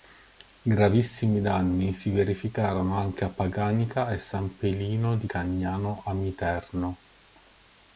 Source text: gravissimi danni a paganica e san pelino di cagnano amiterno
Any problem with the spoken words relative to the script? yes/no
yes